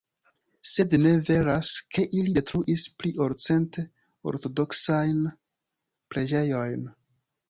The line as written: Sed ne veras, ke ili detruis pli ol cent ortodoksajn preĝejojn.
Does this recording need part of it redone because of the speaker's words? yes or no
no